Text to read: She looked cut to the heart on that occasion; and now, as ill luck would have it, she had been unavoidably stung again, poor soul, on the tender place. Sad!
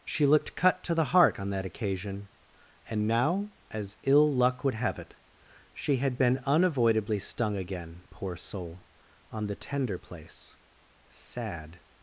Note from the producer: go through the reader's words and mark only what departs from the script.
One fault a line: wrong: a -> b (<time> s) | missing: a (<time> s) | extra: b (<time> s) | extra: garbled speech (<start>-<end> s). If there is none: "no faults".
no faults